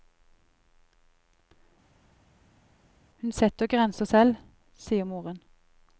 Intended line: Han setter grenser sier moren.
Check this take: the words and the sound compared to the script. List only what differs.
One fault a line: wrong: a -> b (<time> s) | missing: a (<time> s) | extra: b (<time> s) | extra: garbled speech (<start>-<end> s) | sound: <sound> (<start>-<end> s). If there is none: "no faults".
wrong: Han -> Hun (3.2 s)
extra: selv (4.0 s)